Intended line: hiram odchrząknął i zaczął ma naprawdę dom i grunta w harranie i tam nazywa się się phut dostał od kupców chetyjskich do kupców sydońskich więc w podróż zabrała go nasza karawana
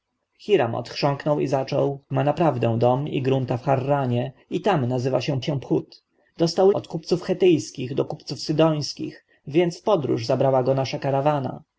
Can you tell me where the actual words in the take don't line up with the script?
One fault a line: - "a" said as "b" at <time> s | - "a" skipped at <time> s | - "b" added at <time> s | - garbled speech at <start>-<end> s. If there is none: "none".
none